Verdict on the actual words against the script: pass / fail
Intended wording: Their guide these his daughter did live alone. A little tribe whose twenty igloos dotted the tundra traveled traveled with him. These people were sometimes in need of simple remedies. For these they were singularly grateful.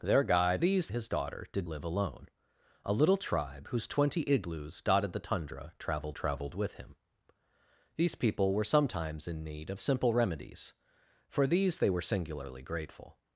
pass